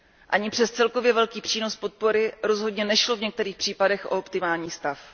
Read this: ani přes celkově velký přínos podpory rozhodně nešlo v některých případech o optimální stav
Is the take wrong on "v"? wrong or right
right